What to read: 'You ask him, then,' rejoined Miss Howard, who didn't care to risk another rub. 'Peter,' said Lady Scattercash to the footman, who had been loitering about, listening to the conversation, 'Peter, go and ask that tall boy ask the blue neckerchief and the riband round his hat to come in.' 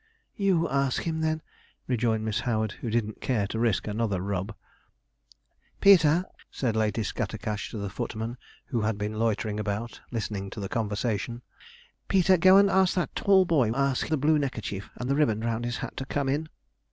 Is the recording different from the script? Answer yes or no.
no